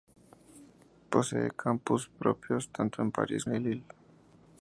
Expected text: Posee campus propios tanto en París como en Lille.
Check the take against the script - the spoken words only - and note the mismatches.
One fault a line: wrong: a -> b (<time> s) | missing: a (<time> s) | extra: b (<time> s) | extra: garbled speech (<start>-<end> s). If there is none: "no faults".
missing: como (3.5 s)